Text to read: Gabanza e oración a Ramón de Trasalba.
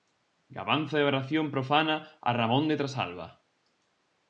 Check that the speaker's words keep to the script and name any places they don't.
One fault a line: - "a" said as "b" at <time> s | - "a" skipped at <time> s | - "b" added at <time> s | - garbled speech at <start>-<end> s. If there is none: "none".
- "profana" added at 1.5 s